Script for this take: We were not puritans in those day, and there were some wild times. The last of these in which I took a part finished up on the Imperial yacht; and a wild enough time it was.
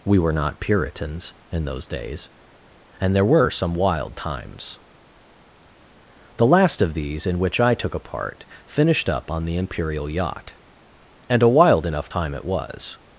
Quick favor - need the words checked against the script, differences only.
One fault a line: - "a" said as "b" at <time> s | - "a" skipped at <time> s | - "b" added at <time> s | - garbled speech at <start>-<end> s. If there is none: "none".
- "day" said as "days" at 1.9 s